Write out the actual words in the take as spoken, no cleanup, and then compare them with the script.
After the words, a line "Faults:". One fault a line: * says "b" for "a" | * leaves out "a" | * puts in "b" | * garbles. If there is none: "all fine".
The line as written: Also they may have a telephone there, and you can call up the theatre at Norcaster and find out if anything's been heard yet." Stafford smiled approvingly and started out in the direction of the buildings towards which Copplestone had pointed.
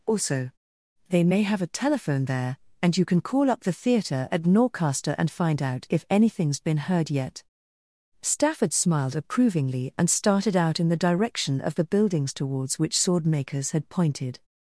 Also they may have a telephone there, and you can call up the theatre at Norcaster and find out if anything's been heard yet." Stafford smiled approvingly and started out in the direction of the buildings towards which Swordmakers had pointed.
Faults:
* says "Swordmakers" for "Copplestone"